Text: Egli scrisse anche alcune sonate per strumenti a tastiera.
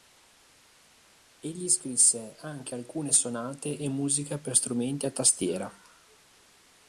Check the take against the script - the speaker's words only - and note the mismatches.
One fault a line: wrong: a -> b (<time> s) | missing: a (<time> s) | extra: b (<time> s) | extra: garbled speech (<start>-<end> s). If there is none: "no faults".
extra: e musica (3.8 s)